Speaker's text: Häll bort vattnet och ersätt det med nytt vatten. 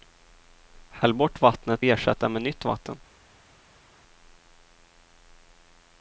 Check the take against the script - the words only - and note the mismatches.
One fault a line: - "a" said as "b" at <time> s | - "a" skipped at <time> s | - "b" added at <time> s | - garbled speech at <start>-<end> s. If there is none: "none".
- "och" skipped at 1.9 s